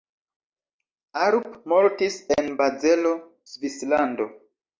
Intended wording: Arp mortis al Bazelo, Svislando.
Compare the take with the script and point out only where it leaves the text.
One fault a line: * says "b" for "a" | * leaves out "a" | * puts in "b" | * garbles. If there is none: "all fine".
* says "en" for "al"